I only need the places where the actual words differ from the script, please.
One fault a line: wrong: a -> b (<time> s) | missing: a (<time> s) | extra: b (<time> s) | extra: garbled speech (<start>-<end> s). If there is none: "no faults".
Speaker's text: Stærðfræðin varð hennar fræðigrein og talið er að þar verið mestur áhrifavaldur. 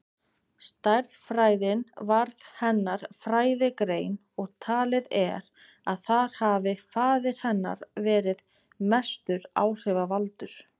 extra: hafi faðir hennar (6.4 s)